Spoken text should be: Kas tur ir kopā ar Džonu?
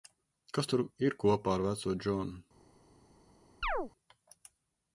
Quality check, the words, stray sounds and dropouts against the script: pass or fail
fail